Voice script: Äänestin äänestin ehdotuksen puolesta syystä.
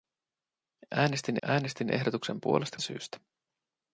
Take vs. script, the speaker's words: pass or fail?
pass